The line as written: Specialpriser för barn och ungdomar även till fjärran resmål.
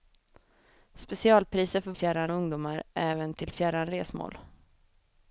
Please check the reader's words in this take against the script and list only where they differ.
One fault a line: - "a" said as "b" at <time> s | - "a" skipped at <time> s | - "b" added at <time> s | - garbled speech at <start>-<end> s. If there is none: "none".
- "barn" said as "fjärran" at 1.9 s